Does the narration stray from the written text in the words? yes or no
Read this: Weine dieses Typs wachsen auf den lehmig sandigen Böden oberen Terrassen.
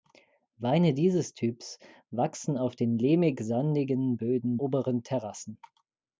no